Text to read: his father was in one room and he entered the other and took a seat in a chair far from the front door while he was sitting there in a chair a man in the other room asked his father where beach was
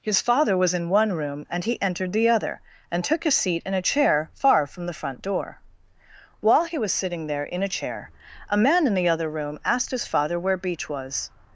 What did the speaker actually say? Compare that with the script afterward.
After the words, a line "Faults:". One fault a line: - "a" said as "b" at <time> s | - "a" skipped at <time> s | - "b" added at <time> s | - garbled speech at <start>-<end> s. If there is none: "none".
his father was in one room and he entered the other and took a seat in a chair far from the front door while he was sitting there in a chair a man in the other room asked his father where beach was
Faults:
none